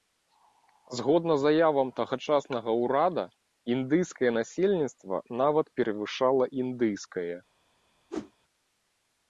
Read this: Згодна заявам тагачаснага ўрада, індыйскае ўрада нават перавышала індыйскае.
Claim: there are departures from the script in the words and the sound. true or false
true